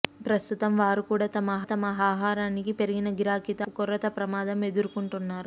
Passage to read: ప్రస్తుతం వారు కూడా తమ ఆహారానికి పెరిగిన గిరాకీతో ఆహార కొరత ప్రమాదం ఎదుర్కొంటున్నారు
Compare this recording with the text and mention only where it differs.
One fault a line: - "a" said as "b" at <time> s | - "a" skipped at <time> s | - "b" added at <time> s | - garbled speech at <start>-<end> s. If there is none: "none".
- "తమ" added at 1.6 s
- "ఆహార" skipped at 3.7 s